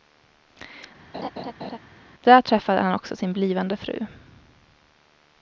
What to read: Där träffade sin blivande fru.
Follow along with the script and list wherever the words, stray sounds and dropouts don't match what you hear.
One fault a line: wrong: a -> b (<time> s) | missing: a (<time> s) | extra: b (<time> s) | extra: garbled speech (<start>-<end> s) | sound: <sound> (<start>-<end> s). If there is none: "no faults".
sound: laugh (1.1-1.8 s)
extra: han också (2.8 s)